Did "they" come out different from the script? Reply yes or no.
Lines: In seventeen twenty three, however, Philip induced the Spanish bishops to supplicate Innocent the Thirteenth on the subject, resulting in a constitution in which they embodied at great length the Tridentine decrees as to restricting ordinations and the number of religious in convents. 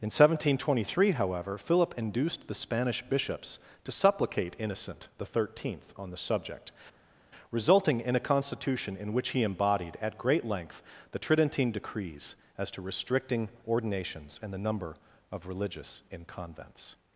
yes